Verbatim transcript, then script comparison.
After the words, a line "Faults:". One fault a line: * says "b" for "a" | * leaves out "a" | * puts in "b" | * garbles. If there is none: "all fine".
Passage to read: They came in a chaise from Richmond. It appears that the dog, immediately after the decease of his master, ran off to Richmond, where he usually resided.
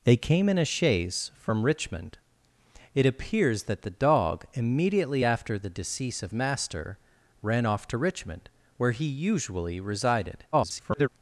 They came in a chaise from Richmond. It appears that the dog, immediately after the decease of master, ran off to Richmond, where he usually resided. [garbled]
Faults:
* leaves out "his"
* garbles